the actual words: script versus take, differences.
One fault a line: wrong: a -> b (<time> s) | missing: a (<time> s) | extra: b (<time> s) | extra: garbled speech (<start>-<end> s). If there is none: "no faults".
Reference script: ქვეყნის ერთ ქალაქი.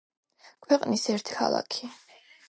no faults